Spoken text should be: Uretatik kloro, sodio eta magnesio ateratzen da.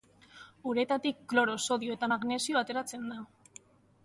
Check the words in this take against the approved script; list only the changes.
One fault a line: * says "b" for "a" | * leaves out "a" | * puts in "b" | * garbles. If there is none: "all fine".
all fine